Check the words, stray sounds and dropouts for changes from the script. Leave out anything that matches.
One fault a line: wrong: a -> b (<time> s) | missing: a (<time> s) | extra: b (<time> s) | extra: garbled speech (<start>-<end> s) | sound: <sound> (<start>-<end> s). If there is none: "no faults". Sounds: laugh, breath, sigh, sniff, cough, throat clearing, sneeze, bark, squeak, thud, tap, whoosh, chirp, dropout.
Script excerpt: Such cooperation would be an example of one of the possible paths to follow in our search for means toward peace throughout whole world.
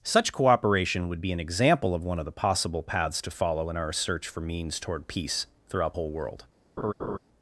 sound: laugh (6.8-7.2 s)